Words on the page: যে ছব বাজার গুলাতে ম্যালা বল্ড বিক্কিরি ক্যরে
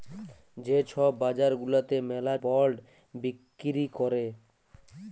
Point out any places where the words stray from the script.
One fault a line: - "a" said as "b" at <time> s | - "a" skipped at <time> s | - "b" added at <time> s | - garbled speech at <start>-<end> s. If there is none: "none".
none